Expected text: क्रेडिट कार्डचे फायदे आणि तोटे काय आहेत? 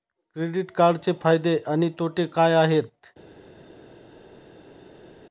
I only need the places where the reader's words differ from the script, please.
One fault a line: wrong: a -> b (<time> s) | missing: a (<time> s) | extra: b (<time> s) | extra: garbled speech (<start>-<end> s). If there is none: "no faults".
no faults